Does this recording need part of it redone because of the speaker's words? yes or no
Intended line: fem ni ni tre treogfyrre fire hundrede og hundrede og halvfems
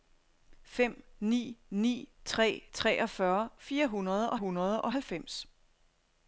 no